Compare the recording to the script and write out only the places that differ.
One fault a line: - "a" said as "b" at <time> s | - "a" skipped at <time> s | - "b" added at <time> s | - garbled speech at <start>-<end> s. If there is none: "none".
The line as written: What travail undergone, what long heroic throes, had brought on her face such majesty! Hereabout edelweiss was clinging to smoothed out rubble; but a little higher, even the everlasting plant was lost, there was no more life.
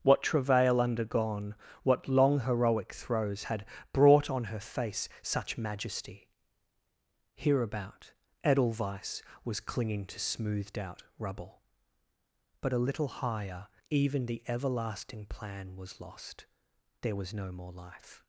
- "plant" said as "plan" at 15.2 s